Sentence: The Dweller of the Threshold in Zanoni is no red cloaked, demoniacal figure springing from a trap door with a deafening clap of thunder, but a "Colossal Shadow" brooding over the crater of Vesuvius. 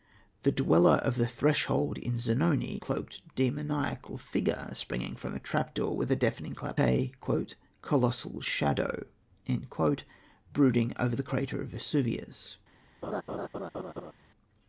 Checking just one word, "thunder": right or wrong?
wrong